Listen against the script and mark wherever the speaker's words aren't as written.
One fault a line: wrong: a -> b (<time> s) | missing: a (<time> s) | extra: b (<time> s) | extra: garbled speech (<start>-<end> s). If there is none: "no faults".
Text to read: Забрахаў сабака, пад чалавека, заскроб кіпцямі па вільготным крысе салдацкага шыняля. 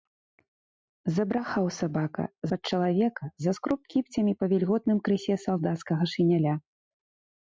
no faults